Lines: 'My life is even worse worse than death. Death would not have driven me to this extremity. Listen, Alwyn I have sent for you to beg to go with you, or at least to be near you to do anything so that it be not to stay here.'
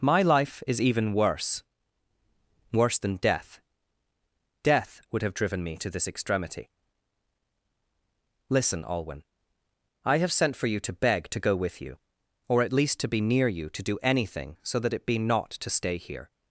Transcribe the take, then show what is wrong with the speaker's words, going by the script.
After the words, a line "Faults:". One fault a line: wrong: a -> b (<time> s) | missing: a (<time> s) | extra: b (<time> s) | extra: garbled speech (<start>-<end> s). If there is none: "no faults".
'My life is even worse worse than death. Death would have driven me to this extremity. Listen, Alwyn I have sent for you to beg to go with you, or at least to be near you to do anything so that it be not to stay here.'
Faults:
missing: not (5.2 s)